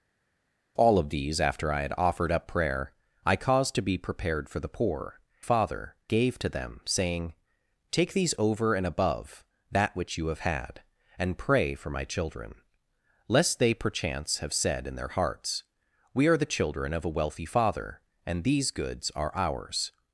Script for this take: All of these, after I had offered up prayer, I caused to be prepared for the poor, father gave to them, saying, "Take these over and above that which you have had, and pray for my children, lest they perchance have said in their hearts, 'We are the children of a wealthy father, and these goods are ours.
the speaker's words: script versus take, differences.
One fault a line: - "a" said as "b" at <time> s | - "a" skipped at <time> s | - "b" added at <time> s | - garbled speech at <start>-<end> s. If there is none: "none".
none